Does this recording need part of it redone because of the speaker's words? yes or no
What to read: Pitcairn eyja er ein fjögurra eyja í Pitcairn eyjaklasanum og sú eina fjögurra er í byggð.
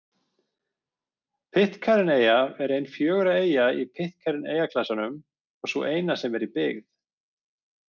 yes